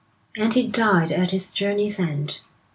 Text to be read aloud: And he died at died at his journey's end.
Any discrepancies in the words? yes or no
yes